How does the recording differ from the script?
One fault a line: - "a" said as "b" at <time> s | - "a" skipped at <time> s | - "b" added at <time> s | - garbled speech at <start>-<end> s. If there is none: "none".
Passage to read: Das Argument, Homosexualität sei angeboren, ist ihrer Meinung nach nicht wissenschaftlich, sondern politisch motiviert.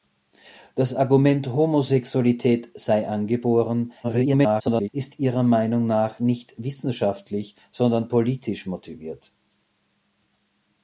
- garbled speech at 4.0-4.9 s